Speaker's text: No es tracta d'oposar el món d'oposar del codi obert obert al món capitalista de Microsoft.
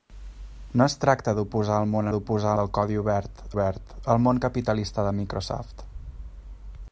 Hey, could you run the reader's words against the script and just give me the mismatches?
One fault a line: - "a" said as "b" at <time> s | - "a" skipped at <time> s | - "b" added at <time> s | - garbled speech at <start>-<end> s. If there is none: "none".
none